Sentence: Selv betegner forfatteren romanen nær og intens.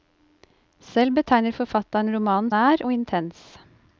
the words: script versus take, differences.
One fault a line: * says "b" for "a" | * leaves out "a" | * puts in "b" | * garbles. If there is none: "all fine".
all fine